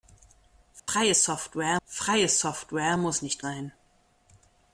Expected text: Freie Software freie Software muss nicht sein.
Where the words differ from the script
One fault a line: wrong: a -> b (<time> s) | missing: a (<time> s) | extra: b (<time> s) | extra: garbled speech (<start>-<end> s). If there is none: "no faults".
no faults